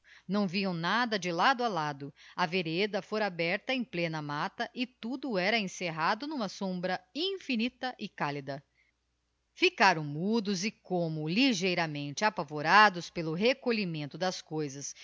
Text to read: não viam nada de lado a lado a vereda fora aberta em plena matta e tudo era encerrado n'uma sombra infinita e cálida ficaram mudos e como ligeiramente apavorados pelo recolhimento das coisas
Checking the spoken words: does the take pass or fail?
pass